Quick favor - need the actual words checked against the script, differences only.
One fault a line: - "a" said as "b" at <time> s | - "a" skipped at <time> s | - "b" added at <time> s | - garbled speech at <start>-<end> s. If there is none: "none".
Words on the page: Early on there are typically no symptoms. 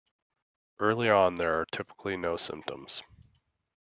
none